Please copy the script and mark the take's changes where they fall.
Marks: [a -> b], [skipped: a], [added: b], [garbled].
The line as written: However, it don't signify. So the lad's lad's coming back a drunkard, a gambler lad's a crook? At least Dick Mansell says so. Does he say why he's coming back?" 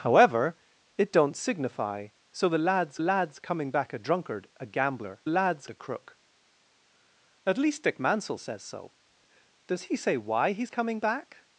However, it don't signify. So the lad's lad's coming back a drunkard, a gambler lad's a crook? At least Dick Mansell says so. Does he say why he's coming back?"